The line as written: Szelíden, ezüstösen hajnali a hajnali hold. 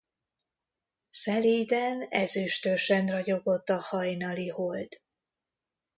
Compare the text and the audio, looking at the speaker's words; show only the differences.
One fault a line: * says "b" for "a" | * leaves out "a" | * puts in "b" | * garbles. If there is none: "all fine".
* says "ragyogott" for "hajnali"